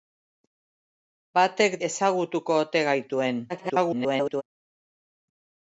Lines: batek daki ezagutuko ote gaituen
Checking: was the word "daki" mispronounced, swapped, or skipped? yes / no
yes